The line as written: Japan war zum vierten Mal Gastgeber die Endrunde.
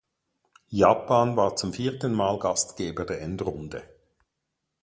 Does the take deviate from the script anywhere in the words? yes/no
yes